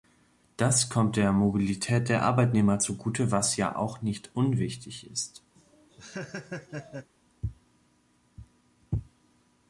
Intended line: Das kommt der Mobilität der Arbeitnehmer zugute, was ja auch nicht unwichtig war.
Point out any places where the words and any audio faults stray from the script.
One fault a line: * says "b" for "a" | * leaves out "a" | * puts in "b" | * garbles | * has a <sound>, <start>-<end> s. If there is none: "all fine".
* says "ist" for "war"
* has a laugh, 5.5-7.1 s